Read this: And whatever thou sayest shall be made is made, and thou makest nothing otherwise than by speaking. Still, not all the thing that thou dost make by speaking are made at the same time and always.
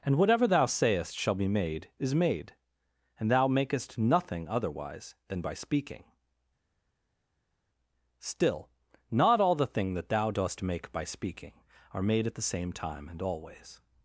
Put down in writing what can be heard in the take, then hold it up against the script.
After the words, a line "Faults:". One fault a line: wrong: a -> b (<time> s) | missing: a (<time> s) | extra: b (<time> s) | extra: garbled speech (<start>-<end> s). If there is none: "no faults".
And whatever thou sayest shall be made is made, and thou makest nothing otherwise than by speaking. Still, not all the thing that thou dost make by speaking are made at the same time and always.
Faults:
no faults